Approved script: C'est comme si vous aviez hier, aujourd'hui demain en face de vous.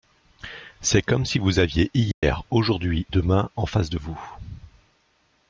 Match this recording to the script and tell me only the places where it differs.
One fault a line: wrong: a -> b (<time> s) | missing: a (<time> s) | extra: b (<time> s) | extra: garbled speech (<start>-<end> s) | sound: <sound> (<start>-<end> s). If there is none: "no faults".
sound: dropout (2.1-2.2 s)